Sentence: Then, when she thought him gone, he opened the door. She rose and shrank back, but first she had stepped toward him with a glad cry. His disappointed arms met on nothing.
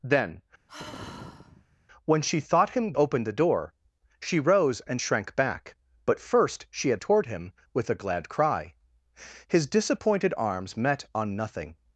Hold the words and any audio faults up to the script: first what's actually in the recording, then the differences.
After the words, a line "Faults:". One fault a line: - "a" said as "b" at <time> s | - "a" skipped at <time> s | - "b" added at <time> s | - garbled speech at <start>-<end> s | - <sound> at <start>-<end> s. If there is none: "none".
Then, when she thought him opened the door. She rose and shrank back, but first she had toward him with a glad cry. His disappointed arms met on nothing.
Faults:
- sigh at 0.7-1.8 s
- "gone he" skipped at 2.9 s
- "stepped" skipped at 7.0 s